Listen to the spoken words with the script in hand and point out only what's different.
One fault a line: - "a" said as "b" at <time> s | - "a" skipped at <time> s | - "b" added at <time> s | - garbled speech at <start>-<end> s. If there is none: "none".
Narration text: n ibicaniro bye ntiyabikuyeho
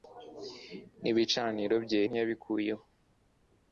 none